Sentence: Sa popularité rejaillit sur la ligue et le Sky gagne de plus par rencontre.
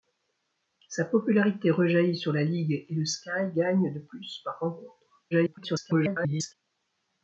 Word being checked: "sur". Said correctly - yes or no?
yes